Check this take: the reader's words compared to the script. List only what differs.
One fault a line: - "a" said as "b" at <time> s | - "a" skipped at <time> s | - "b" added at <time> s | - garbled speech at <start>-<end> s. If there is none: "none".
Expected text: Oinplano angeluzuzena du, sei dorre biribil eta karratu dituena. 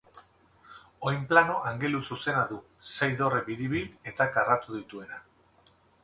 none